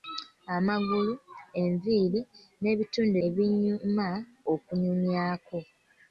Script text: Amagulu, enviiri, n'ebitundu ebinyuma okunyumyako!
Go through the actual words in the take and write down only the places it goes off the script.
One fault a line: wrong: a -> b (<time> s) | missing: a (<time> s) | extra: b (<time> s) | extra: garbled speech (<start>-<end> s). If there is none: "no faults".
no faults